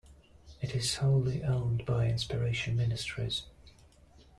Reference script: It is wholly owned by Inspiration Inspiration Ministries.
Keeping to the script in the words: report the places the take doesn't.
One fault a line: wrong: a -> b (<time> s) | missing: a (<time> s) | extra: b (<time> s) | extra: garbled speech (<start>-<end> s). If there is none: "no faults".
missing: Inspiration (2.8 s)